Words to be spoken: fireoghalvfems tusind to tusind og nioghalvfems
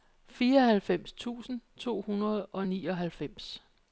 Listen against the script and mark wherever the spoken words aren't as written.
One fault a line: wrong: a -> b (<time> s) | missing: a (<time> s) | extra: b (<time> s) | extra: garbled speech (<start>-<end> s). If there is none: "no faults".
wrong: tusind -> hundrede (2.0 s)